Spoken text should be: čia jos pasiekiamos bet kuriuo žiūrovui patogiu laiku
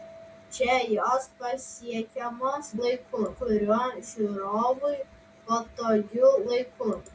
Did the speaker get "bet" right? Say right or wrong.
wrong